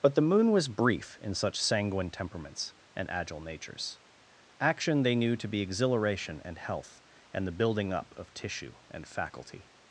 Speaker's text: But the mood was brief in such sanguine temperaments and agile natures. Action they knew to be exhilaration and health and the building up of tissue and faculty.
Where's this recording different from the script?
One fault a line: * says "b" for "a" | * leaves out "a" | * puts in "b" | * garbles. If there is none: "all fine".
* says "moon" for "mood"